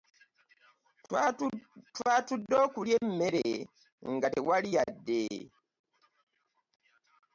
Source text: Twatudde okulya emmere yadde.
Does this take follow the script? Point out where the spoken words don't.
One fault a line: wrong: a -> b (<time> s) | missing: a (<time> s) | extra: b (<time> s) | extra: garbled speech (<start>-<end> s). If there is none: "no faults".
extra: nga tewali (4.1 s)